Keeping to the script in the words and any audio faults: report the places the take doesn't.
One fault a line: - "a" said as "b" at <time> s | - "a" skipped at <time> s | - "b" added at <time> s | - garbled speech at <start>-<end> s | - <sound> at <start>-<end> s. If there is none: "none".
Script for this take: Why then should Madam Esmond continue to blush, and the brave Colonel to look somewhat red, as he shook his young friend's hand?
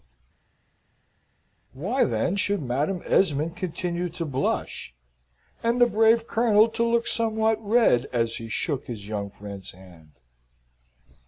none